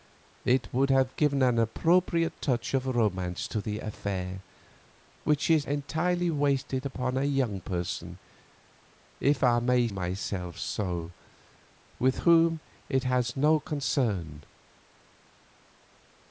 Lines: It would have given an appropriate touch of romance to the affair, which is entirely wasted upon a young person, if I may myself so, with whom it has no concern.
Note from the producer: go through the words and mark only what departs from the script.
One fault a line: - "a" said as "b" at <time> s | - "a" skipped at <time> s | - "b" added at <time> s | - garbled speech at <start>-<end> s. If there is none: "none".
none